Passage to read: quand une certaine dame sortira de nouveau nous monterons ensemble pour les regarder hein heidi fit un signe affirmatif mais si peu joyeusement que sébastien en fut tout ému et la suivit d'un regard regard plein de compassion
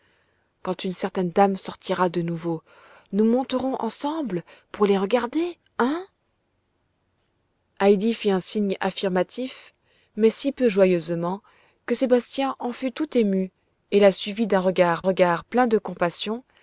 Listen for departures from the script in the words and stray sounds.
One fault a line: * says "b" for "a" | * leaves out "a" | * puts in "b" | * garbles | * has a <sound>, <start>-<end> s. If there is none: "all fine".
all fine